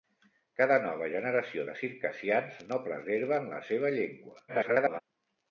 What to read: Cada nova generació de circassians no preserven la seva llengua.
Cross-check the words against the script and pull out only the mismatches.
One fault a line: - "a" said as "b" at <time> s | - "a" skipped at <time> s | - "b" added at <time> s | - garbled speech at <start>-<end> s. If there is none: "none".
- garbled speech at 4.5-5.0 s